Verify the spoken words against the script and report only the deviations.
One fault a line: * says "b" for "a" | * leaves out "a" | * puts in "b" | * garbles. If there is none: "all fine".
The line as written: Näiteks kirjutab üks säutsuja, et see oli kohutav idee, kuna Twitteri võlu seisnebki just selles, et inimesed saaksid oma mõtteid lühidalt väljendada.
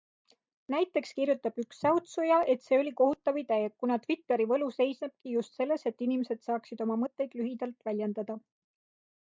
all fine